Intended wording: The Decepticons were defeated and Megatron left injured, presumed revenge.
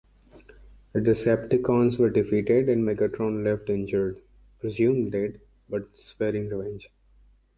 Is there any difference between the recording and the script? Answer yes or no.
yes